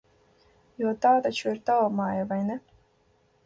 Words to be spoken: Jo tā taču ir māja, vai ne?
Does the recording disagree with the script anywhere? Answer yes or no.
yes